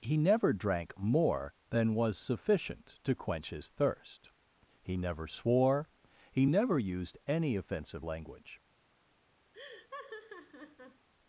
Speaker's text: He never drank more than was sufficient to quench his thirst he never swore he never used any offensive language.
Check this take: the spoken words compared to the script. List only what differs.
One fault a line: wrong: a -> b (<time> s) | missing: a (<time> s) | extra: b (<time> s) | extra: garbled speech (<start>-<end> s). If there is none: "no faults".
no faults